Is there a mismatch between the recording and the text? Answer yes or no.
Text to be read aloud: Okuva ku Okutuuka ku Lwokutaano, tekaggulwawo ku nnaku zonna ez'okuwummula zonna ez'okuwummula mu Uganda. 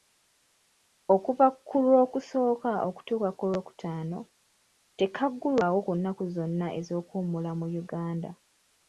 yes